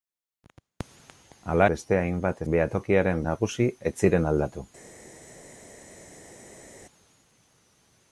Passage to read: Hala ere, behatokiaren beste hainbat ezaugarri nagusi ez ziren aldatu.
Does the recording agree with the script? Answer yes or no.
no